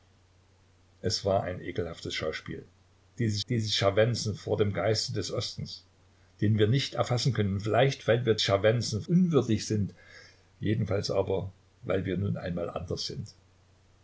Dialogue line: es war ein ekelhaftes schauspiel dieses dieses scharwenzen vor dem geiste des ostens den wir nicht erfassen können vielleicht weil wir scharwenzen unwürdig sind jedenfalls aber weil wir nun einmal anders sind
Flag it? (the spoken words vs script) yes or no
no